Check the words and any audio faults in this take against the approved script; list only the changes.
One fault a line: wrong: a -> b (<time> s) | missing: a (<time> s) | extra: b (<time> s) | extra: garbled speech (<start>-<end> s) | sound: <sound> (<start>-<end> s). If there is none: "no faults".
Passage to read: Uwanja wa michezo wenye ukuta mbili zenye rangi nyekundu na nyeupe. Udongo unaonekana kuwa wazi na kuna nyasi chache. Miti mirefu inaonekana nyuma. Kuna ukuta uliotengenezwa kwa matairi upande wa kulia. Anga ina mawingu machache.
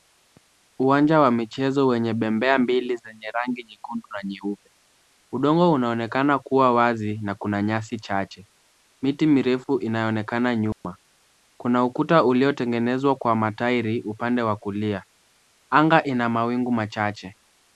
wrong: ukuta -> bembea (2.1 s)
sound: dropout (10.7-10.8 s)